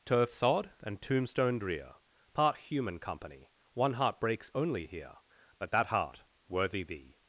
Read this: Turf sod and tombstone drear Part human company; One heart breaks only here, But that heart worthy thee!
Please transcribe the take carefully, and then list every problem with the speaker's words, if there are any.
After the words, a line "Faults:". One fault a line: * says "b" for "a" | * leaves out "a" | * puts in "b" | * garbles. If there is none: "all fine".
Turf sod and tombstone drear Part human company; One heart breaks only here, But that heart worthy thee!
Faults:
all fine